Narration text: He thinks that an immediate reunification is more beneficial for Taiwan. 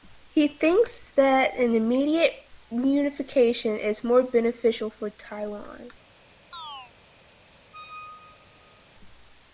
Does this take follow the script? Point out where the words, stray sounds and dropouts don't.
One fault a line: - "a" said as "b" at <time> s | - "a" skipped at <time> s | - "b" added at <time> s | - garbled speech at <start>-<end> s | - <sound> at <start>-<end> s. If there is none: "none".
- chirp at 6.5-6.9 s
- squeak at 7.7-8.9 s